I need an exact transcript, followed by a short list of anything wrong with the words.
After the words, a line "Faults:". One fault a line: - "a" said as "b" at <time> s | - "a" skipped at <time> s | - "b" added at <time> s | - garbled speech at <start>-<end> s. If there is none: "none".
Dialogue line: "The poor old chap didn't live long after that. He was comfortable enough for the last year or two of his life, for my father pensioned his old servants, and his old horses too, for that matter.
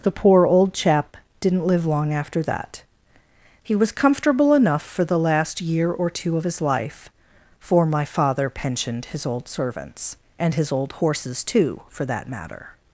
"The poor old chap didn't live long after that. He was comfortable enough for the last year or two of his life, for my father pensioned his old servants, and his old horses too, for that matter.
Faults:
none